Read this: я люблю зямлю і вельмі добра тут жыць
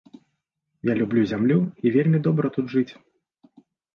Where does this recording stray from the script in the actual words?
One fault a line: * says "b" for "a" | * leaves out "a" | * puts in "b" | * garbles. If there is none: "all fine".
all fine